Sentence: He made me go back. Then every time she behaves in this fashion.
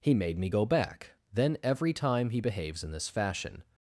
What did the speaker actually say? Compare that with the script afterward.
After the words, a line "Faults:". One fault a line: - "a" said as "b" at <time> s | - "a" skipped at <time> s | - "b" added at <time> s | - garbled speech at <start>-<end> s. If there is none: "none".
He made me go back. Then every time he behaves in this fashion.
Faults:
- "she" said as "he" at 2.3 s